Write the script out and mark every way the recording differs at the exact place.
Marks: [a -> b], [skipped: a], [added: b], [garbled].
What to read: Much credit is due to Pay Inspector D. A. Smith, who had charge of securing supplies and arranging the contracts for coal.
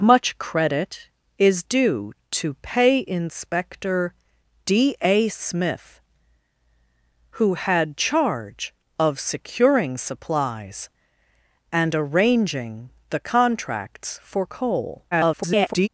Much credit is due to Pay Inspector D. A. Smith, who had charge of securing supplies and arranging the contracts for coal. [garbled]